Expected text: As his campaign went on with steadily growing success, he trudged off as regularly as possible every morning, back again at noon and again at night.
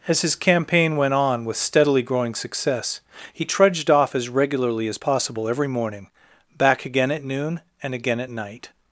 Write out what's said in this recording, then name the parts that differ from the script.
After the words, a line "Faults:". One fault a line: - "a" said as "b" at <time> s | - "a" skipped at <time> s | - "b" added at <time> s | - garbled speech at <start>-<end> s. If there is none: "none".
As his campaign went on with steadily growing success, he trudged off as regularly as possible every morning, back again at noon and again at night.
Faults:
none